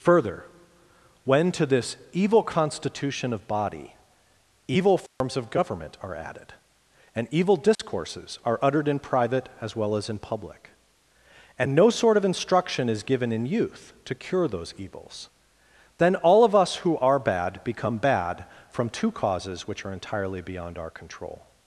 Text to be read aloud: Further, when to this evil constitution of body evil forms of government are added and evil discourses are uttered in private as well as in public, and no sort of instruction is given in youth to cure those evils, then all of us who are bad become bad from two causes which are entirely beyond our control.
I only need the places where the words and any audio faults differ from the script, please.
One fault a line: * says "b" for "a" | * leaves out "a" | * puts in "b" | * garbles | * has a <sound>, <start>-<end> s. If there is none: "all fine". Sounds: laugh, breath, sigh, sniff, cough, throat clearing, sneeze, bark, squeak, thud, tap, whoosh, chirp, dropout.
* has a dropout, 5.1-5.2 s
* has a dropout, 7.7-7.8 s